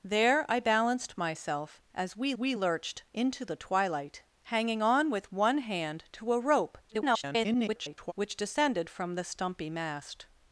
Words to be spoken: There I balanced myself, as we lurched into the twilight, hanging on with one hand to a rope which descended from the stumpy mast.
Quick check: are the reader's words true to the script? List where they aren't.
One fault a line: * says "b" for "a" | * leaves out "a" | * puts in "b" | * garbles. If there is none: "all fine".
* puts in "we"
* garbles